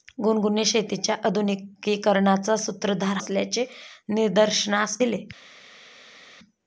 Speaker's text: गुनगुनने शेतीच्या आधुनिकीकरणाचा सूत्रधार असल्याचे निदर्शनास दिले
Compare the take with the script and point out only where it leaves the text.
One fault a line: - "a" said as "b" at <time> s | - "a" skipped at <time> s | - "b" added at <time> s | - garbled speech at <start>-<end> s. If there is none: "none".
none